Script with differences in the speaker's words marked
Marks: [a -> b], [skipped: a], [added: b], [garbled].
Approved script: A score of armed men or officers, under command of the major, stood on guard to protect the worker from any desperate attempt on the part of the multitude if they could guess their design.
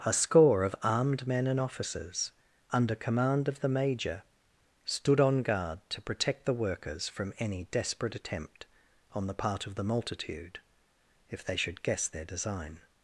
A score of armed men [or -> and] officers, under command of the major, stood on guard to protect the [worker -> workers] from any desperate attempt on the part of the multitude if they [could -> should] guess their design.